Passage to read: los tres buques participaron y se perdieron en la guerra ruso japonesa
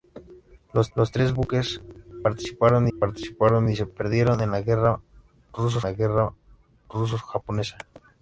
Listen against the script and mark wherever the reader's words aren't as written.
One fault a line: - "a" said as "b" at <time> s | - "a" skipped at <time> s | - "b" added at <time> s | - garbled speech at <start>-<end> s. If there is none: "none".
- "los" added at 1.0 s
- "participaron" added at 3.0 s
- "la guerra ruso" added at 5.8 s